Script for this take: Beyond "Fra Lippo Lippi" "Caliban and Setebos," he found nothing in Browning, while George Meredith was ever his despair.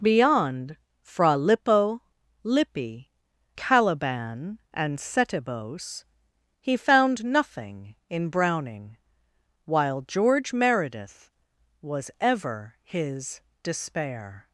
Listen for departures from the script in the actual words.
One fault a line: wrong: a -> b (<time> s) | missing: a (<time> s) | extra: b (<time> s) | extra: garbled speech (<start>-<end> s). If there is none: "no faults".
no faults